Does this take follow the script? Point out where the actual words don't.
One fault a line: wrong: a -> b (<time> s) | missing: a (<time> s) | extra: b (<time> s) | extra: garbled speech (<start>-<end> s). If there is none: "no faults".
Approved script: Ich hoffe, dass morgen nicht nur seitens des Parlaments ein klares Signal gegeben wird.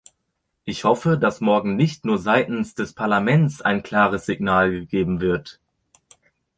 no faults